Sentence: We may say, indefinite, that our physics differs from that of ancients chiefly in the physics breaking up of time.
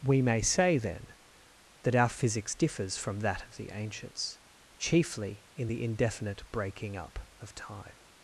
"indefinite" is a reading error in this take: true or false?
true